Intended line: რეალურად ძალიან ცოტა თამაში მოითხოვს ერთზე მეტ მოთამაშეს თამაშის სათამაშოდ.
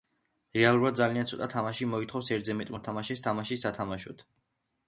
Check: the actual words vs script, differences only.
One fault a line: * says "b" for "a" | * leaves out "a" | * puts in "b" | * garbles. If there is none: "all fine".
all fine